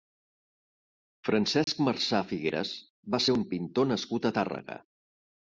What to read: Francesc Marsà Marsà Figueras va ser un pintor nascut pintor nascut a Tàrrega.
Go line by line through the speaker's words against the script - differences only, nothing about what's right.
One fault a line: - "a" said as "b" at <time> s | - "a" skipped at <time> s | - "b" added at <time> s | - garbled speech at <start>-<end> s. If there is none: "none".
- "Marsà" skipped at 2.2 s
- "pintor nascut" skipped at 4.3 s